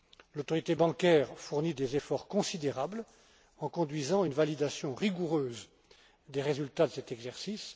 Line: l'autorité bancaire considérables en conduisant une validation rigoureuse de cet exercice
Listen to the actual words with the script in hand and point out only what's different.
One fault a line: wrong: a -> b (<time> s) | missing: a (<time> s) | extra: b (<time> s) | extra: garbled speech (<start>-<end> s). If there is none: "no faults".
extra: fournit des efforts (1.4 s)
extra: des résultats (6.3 s)